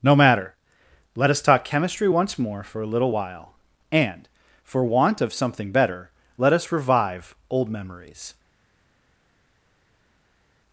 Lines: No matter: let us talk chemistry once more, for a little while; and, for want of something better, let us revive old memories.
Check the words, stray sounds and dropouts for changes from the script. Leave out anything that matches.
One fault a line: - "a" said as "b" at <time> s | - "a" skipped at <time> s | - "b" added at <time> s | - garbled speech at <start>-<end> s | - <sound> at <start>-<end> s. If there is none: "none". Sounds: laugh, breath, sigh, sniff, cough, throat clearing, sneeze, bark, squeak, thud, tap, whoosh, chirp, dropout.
none